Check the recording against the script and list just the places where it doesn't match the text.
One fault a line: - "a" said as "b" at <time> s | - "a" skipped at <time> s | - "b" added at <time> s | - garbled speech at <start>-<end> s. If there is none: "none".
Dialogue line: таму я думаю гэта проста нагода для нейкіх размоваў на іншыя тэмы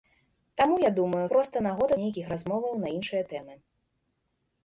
- "гэта" skipped at 1.2 s
- "для" skipped at 1.9 s